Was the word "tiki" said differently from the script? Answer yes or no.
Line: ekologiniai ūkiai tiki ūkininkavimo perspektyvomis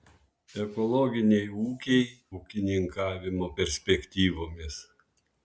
yes